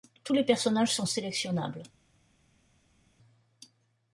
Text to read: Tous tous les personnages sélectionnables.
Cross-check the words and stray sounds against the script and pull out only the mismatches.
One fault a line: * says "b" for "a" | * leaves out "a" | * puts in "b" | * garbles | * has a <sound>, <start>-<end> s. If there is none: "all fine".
* leaves out "tous"
* puts in "sont"